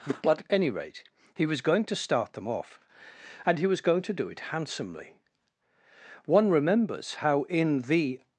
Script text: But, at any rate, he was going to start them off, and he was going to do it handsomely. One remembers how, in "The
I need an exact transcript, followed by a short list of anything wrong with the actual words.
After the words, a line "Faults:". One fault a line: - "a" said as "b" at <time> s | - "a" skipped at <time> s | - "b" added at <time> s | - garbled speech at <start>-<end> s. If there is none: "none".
But, at any rate, he was going to start them off, and he was going to do it handsomely. One remembers how, in "The
Faults:
none